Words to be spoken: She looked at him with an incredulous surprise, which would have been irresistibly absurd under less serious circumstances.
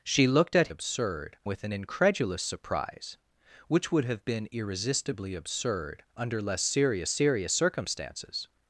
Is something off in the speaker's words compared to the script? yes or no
yes